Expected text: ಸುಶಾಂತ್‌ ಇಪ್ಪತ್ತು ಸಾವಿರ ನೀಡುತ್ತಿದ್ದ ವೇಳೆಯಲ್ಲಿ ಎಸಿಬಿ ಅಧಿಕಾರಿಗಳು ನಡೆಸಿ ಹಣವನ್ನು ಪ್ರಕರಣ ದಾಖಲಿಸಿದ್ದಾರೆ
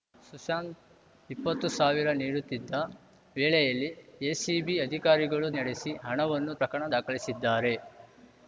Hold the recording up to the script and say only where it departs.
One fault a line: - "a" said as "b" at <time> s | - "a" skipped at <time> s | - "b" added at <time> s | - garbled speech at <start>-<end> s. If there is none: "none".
none